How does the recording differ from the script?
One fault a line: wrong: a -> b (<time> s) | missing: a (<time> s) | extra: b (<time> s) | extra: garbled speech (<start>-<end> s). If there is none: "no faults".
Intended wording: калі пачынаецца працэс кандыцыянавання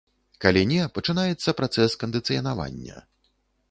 extra: не (0.7 s)